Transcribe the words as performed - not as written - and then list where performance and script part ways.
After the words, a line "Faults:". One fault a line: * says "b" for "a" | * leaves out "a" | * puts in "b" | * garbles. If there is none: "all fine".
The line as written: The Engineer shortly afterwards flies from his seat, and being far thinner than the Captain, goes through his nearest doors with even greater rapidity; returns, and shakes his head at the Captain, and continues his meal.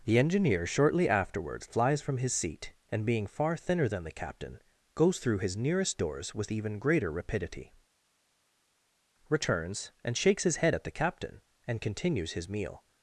The Engineer shortly afterwards flies from his seat, and being far thinner than the Captain, goes through his nearest doors with even greater rapidity; returns, and shakes his head at the Captain, and continues his meal.
Faults:
all fine